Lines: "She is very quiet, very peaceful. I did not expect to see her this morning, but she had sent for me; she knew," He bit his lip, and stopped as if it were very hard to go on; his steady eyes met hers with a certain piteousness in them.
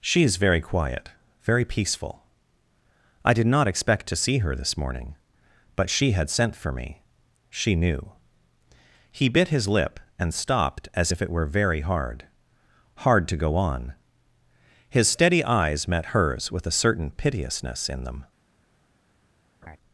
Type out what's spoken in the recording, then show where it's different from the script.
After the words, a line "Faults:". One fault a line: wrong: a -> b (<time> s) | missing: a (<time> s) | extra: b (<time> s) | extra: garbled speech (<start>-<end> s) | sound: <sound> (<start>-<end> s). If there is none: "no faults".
"She is very quiet, very peaceful. I did not expect to see her this morning, but she had sent for me; she knew," He bit his lip, and stopped as if it were very hard hard to go on; his steady eyes met hers with a certain piteousness in them.
Faults:
extra: hard (13.0 s)
sound: laugh (19.6-19.8 s)